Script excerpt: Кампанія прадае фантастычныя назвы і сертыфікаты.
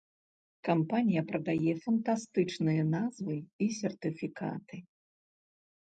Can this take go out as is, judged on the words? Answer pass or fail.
pass